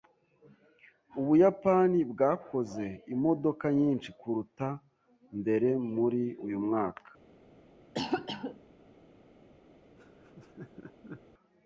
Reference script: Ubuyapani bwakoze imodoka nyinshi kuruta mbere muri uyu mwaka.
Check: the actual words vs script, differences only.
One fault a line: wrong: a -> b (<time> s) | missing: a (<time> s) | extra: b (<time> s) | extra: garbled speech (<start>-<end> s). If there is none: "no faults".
no faults